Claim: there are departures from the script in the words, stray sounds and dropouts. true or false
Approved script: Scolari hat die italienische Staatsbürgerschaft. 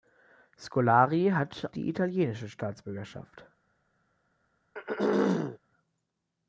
true